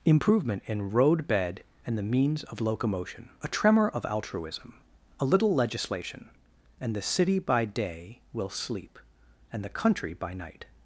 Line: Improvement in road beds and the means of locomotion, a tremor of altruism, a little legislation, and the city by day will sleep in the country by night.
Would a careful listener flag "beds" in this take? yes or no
yes